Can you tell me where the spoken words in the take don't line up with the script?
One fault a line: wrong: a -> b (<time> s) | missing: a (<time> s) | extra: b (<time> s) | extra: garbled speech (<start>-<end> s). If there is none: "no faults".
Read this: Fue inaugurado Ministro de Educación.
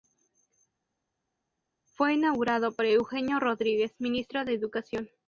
extra: por Eugenio Rodríguez (2.7 s)